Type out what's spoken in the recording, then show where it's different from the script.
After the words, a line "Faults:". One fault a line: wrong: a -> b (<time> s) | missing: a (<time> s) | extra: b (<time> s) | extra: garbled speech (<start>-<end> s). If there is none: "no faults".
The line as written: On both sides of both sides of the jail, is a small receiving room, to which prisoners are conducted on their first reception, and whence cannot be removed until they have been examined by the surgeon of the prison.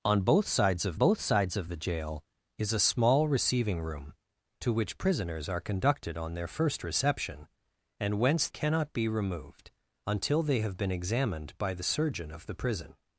On both sides of both sides of the jail, is a small receiving room, to which prisoners are conducted on their first reception, and whence cannot be removed until they have been examined by the surgeon of the prison.
Faults:
no faults